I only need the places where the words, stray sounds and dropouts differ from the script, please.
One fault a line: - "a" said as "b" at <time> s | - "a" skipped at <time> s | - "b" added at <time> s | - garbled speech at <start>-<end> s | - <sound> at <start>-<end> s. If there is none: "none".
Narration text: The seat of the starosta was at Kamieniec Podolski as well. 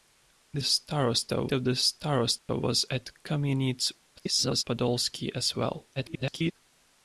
- "seat" said as "starosta" at 0.6 s
- dropout at 2.4-2.5 s
- garbled speech at 4.2-4.6 s
- garbled speech at 6.0-6.5 s